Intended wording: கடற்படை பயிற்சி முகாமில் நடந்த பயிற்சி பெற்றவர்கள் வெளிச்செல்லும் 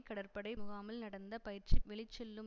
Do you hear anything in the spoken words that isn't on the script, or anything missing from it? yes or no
yes